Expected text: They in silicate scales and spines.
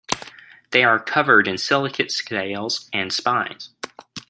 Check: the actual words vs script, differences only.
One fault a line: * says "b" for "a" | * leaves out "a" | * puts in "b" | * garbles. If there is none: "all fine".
* puts in "are covered"